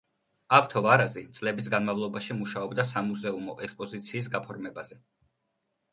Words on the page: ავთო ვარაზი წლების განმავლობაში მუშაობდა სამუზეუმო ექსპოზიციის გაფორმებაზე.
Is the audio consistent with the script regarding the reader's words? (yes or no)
yes